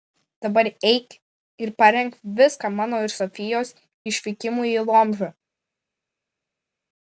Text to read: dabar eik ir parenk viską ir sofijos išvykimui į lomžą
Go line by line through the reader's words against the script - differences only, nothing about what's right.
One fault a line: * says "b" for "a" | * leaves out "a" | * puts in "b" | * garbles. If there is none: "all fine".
* puts in "mano"